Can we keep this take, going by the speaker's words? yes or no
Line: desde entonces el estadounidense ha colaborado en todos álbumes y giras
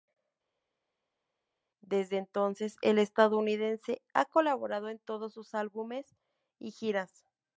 no